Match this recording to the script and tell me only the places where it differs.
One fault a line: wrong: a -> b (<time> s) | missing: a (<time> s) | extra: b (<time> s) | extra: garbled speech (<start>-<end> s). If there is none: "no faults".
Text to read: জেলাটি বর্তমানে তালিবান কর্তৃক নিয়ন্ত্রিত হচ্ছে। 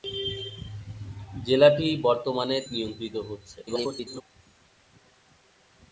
missing: তালিবান কর্তৃক (2.6 s)
extra: garbled speech (3.7-4.2 s)